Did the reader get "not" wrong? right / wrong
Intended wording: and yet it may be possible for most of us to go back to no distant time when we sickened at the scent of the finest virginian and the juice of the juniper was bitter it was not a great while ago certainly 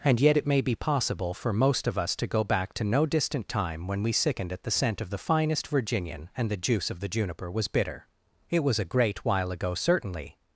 wrong